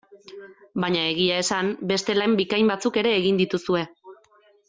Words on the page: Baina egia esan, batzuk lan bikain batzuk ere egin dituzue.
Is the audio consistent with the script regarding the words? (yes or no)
no